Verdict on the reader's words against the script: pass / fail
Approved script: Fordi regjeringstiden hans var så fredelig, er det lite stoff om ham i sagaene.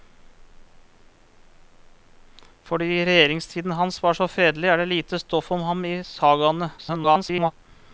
fail